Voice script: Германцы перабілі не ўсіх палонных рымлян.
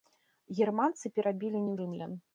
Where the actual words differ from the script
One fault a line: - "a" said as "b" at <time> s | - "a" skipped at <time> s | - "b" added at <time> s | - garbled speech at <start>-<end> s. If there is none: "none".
- "ўсіх палонных" skipped at 1.7 s